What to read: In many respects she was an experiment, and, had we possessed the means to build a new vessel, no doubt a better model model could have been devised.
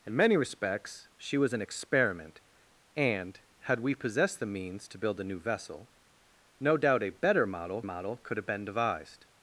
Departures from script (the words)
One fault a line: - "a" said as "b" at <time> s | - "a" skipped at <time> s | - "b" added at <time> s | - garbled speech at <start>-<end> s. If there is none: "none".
none